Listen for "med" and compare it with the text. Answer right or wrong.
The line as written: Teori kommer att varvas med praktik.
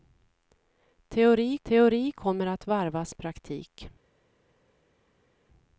wrong